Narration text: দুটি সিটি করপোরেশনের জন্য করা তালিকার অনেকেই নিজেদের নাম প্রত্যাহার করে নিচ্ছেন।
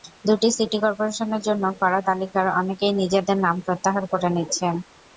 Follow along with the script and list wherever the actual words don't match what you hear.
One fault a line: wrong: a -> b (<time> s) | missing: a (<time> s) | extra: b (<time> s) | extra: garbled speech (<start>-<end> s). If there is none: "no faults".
no faults